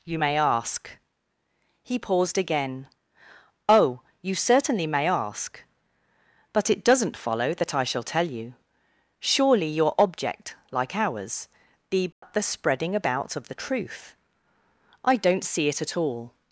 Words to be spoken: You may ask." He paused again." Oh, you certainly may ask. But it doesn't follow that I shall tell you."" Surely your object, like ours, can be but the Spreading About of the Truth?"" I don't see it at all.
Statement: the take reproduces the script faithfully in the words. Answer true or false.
false